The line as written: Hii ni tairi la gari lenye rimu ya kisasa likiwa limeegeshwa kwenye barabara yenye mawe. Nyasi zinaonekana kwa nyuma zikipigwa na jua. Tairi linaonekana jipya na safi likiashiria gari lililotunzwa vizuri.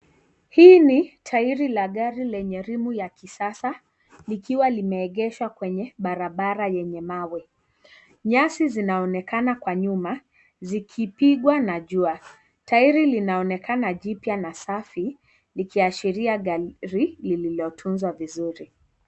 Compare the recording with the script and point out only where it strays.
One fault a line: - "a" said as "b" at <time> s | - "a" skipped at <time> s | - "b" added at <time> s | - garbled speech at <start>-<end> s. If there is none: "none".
none